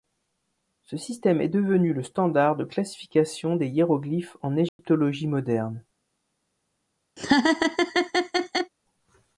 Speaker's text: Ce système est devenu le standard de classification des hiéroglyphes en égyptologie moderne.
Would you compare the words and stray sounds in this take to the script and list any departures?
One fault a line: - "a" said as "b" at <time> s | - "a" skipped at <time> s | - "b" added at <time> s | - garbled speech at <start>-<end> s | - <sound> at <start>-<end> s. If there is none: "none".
- dropout at 4.7-4.8 s
- laugh at 7.2-8.7 s